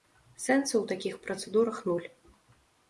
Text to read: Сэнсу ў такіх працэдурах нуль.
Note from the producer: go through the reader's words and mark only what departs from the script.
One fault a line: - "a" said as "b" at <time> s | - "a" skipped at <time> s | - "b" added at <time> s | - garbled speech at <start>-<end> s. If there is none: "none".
none